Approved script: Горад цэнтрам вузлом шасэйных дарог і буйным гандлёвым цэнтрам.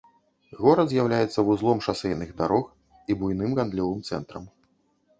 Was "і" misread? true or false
false